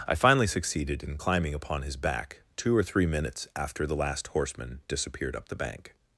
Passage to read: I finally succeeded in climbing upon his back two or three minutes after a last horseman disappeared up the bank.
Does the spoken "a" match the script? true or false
false